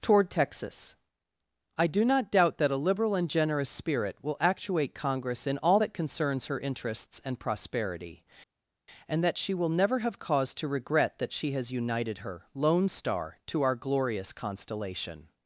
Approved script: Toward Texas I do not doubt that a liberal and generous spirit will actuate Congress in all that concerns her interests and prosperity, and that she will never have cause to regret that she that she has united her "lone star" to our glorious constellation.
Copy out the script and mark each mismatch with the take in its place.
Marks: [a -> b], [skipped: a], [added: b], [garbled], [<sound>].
Toward Texas I do not doubt that a liberal and generous spirit will actuate Congress in all that concerns her interests and prosperity, and that she will never have cause to regret that she [skipped: that she] has united her "lone star" to our glorious constellation.